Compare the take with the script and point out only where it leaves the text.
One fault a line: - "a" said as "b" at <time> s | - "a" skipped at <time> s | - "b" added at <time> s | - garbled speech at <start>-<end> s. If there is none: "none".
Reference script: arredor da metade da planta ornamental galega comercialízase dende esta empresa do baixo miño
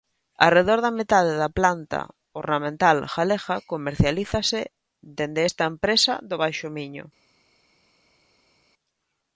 none